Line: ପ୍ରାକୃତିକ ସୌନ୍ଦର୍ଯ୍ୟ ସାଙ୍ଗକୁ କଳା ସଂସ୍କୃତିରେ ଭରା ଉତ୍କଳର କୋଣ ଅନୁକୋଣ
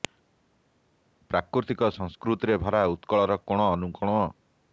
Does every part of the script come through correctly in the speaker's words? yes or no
no